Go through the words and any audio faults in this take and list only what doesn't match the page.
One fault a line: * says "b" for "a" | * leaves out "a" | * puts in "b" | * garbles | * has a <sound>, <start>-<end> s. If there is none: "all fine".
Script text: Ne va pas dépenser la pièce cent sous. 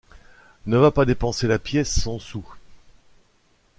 all fine